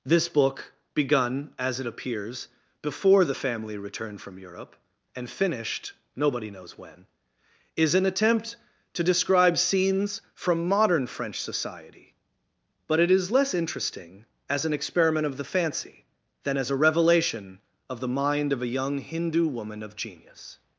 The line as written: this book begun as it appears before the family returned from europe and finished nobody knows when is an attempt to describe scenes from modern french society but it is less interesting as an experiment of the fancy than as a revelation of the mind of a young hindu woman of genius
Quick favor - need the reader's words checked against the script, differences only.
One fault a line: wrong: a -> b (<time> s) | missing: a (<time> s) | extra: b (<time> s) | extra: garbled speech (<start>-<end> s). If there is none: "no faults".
no faults